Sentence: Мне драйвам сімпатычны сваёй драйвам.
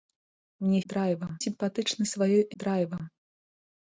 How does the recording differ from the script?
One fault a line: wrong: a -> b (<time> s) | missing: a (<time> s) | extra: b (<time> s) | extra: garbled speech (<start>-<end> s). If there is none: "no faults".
no faults